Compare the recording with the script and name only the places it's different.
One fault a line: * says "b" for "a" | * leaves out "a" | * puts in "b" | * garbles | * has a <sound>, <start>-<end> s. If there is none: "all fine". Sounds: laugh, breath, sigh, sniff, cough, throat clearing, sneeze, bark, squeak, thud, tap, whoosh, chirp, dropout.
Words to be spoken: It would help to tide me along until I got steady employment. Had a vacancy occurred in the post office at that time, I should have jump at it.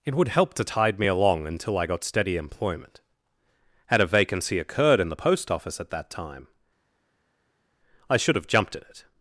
* says "jumped" for "jump"